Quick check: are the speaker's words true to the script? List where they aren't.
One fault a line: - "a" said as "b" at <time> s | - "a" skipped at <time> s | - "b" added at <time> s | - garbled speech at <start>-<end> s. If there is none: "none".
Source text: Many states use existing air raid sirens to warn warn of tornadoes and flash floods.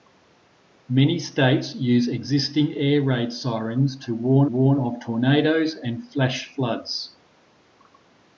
none